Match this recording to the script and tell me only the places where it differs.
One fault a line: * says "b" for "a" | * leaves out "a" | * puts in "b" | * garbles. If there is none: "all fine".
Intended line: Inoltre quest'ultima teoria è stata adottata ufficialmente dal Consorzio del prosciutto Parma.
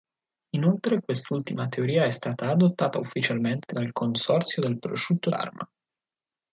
all fine